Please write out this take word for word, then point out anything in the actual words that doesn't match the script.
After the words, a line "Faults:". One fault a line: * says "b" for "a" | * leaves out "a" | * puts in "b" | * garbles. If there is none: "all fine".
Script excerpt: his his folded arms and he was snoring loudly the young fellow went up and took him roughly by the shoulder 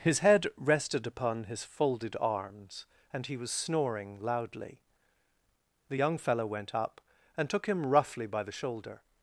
his head rested upon his folded arms and he was snoring loudly the young fellow went up and took him roughly by the shoulder
Faults:
* puts in "head rested upon"